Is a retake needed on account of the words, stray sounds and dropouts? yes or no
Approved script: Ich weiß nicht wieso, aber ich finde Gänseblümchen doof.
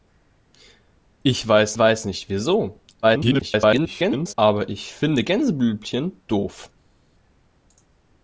yes